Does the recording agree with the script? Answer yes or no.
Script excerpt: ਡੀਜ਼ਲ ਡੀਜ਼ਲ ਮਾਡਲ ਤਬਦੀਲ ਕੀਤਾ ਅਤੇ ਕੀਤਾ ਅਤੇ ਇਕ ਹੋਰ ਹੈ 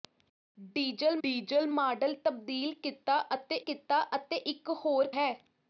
yes